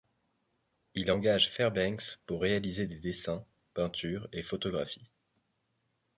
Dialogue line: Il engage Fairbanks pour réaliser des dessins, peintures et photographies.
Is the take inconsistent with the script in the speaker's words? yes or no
no